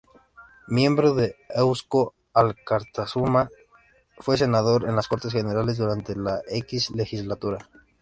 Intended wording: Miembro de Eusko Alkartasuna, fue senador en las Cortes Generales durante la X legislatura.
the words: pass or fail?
pass